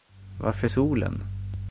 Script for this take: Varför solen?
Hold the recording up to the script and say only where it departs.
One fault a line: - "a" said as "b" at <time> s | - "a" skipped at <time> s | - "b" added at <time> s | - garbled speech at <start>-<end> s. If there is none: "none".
none